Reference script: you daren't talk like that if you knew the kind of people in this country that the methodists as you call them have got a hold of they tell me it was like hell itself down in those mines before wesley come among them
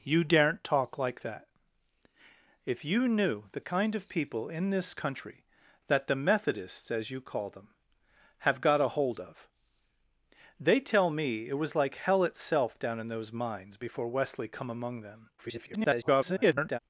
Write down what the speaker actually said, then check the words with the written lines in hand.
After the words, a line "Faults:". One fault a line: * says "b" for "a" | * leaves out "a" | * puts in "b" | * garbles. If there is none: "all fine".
you daren't talk like that if you knew the kind of people in this country that the methodists as you call them have got a hold of they tell me it was like hell itself down in those mines before wesley come among them [garbled]
Faults:
* garbles